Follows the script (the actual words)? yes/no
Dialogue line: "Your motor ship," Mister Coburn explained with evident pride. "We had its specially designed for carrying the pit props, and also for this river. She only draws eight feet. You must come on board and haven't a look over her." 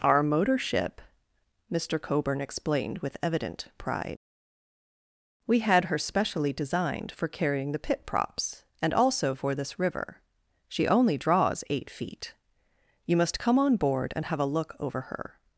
no